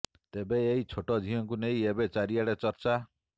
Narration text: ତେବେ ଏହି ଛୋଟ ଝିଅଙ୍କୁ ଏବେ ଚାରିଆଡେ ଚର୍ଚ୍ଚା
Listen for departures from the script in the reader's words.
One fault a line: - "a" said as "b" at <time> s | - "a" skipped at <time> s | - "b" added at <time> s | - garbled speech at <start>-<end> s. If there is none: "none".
- "ନେଇ" added at 1.6 s